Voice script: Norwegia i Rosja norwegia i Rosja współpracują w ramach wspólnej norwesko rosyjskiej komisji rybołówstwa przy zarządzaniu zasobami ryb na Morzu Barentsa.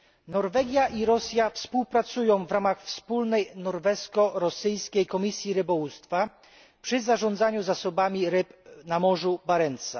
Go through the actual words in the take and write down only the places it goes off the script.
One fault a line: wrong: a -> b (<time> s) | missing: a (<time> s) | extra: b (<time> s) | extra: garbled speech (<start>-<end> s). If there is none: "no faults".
missing: norwegia i Rosja (1.5 s)